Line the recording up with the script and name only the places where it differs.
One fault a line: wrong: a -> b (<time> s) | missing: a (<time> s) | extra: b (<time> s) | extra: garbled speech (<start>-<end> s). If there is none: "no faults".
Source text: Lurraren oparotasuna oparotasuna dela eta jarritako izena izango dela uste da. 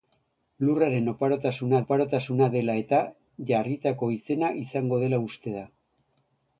no faults